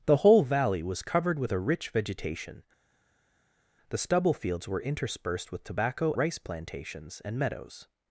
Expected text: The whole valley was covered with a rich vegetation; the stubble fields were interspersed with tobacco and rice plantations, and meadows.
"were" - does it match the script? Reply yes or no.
yes